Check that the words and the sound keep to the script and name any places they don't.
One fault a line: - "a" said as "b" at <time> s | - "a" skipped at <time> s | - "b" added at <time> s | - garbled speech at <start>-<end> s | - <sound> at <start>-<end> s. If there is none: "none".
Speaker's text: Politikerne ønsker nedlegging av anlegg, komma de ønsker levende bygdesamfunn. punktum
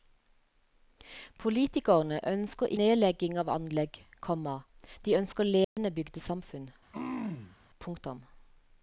- dropout at 5.6-5.8 s
- throat clearing at 6.9-7.6 s